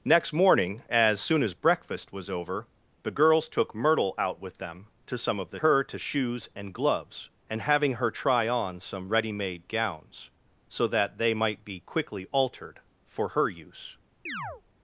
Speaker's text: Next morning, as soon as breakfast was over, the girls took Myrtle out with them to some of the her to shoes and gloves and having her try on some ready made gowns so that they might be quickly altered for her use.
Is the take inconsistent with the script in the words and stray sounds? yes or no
yes